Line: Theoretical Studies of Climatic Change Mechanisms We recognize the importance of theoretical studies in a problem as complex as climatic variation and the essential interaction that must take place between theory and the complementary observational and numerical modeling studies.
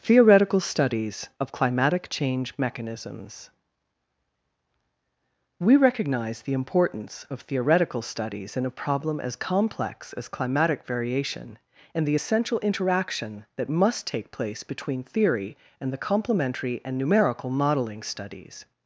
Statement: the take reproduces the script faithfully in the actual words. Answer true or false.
false